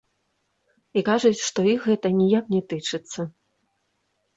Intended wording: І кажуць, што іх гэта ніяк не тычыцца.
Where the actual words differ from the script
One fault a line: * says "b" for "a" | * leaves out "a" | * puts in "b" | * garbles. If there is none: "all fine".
all fine